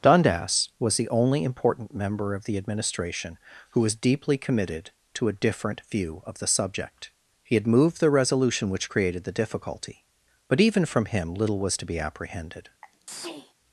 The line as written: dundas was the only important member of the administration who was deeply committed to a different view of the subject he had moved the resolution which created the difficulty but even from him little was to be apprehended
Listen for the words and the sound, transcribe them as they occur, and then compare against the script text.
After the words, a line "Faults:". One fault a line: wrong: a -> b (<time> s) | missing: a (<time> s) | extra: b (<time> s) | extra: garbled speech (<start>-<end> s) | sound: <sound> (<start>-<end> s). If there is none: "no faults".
dundas was the only important member of the administration who was deeply committed to a different view of the subject he had moved the resolution which created the difficulty but even from him little was to be apprehended
Faults:
sound: sneeze (12.8-13.5 s)